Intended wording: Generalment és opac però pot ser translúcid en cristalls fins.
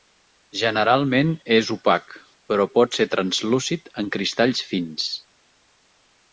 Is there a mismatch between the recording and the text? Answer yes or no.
no